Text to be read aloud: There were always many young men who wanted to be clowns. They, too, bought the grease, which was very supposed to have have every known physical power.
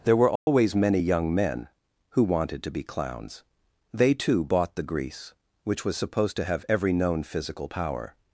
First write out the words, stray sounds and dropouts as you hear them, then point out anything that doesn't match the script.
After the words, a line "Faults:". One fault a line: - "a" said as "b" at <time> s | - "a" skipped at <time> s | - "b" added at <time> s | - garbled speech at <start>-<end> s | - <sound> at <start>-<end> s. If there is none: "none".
There were always many young men who wanted to be clowns. They, too, bought the grease, which was supposed to have every known physical power.
Faults:
- dropout at 0.4-0.5 s
- "very" skipped at 6.0 s
- "have" skipped at 6.7 s